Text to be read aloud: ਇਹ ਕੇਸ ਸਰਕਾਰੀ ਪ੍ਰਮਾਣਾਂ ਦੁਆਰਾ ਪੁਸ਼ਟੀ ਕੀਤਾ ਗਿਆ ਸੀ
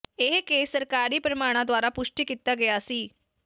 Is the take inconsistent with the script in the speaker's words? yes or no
no